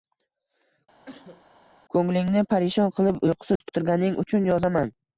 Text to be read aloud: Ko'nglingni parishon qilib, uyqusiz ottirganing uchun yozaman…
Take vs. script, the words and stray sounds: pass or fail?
fail